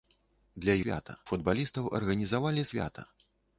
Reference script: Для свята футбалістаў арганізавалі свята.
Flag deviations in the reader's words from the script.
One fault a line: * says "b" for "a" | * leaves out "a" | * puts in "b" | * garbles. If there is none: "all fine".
all fine